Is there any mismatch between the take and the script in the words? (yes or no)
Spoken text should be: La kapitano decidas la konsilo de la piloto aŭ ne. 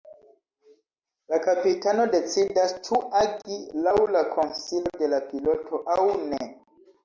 yes